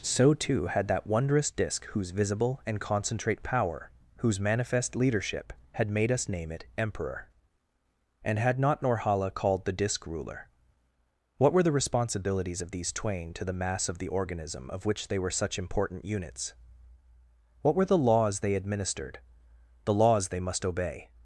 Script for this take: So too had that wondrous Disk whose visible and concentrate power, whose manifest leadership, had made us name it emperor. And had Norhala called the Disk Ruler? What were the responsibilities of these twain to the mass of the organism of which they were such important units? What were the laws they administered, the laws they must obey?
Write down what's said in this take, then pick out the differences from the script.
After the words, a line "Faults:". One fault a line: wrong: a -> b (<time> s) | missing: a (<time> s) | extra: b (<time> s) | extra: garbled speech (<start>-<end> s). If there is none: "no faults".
So too had that wondrous Disk whose visible and concentrate power, whose manifest leadership, had made us name it emperor. And had not Norhala called the Disk Ruler? What were the responsibilities of these twain to the mass of the organism of which they were such important units? What were the laws they administered, the laws they must obey?
Faults:
extra: not (8.6 s)